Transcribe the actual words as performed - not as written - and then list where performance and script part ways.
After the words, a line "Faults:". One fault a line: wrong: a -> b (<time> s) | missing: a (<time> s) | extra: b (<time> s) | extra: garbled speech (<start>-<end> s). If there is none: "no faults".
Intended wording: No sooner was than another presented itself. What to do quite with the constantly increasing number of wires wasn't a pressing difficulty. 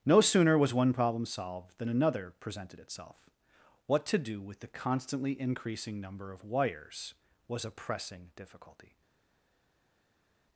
No sooner was one problem solved than another presented itself. What to do with the constantly increasing number of wires was a pressing difficulty.
Faults:
extra: one problem solved (0.7 s)
missing: quite (4.4 s)
wrong: wasn't -> was (7.5 s)